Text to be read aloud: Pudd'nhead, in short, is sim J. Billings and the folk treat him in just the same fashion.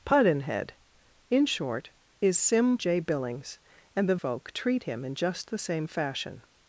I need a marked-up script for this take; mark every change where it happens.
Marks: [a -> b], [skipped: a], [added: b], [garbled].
Pudd'nhead, in short, is sim J. Billings and the folk treat him in just the same fashion.